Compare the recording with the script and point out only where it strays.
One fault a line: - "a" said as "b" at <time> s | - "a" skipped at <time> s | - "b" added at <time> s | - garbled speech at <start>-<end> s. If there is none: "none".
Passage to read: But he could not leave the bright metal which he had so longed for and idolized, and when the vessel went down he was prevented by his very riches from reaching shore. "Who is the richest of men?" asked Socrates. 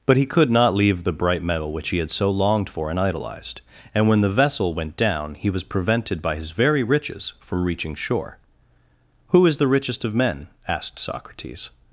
none